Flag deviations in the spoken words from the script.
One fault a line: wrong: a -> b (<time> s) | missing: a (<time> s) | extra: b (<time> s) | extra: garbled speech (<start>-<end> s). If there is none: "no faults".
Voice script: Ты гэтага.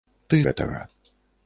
no faults